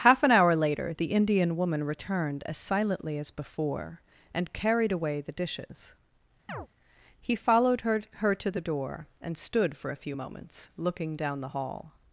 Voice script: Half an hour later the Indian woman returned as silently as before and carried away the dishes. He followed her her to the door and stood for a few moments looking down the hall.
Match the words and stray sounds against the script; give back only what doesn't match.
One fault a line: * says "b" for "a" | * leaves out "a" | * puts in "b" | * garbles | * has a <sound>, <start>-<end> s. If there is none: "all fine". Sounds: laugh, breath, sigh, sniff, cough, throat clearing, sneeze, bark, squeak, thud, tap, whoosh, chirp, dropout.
* has a chirp, 6.5-6.7 s